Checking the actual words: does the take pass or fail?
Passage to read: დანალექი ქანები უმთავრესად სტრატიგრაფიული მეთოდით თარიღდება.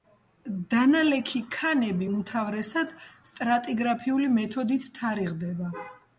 pass